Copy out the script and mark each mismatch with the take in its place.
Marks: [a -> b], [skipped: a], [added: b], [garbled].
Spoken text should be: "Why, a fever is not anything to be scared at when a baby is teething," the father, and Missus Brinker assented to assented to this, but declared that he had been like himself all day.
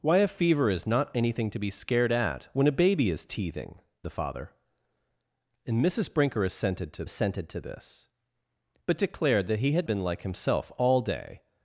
"Why, a fever is not anything to be scared at when a baby is teething," the father, and Missus Brinker assented to assented to this, but declared that he had been like himself all day.